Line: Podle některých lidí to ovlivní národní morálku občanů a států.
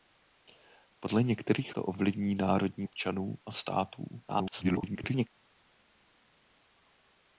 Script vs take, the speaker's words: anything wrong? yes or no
yes